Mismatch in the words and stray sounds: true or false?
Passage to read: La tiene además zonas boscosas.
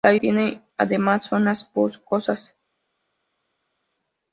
false